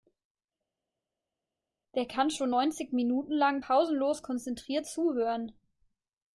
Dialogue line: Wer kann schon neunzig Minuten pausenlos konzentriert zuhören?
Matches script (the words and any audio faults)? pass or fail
fail